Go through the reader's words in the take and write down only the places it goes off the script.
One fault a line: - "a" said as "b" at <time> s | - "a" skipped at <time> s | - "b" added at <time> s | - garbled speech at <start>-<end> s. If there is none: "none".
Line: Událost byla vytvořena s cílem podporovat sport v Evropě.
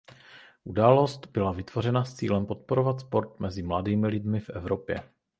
- "mezi mladými lidmi" added at 3.4 s